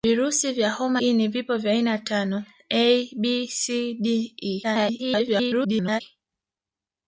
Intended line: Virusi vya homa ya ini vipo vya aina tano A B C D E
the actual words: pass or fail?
fail